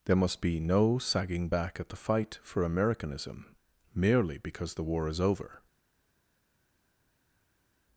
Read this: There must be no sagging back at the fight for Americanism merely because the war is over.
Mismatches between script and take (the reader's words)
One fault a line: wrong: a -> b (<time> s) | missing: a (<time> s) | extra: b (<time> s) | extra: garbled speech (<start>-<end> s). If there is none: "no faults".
no faults